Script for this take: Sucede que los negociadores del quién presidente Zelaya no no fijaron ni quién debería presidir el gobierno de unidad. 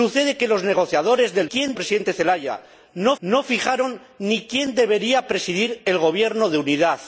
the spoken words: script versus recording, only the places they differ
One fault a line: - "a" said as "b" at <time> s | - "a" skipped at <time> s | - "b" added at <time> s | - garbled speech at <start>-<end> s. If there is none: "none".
none